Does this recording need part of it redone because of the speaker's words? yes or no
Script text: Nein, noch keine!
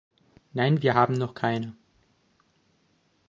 yes